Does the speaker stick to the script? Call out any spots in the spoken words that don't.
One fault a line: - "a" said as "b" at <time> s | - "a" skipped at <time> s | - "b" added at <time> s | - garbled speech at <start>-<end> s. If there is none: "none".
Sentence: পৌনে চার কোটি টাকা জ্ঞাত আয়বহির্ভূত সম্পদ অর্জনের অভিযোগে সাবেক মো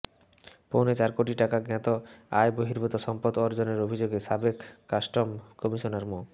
- "কাস্টম কমিশনার" added at 4.9 s